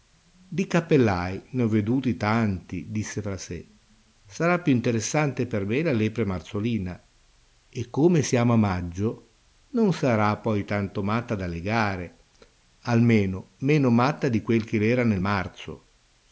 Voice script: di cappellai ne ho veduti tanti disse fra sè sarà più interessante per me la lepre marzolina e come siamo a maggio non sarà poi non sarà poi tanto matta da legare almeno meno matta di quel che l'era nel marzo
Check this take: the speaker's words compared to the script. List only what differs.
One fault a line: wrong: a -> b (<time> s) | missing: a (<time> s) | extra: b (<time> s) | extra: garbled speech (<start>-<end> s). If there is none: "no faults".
missing: non sarà poi (10.6 s)